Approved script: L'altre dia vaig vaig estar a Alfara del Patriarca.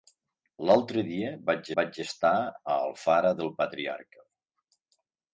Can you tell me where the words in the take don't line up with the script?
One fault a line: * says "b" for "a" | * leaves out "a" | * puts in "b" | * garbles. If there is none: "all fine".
all fine